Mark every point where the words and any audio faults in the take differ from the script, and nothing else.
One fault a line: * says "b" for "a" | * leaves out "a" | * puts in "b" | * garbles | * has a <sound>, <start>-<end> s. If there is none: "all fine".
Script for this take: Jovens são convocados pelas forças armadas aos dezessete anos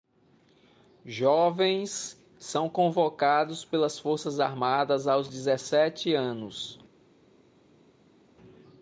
all fine